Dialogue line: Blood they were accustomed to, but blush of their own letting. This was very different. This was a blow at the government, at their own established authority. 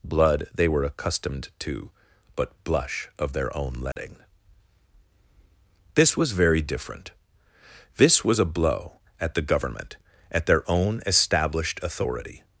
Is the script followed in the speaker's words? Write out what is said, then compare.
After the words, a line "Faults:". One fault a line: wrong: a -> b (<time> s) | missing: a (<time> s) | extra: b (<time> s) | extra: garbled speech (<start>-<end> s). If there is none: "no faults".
Blood they were accustomed to, but blush of their own letting. This was very different. This was a blow at the government, at their own established authority.
Faults:
no faults